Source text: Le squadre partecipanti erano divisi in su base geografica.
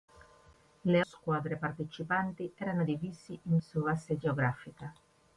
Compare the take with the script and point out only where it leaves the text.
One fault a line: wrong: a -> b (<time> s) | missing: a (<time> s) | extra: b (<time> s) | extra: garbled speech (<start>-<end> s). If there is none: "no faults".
no faults